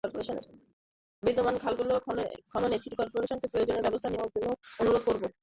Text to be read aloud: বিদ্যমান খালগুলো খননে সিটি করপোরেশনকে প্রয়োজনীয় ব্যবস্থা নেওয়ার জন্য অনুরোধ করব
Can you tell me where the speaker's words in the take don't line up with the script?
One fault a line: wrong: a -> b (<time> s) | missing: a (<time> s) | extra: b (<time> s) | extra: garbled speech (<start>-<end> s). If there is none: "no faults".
no faults